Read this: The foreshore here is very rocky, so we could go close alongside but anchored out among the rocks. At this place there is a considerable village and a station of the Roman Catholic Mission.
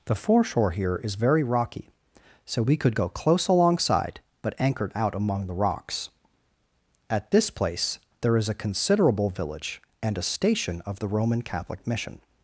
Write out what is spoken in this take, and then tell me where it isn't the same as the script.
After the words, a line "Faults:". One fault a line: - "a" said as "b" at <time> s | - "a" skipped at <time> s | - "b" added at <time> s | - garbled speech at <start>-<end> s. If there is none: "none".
The foreshore here is very rocky, so we could go close alongside but anchored out among the rocks. At this place there is a considerable village and a station of the Roman Catholic Mission.
Faults:
none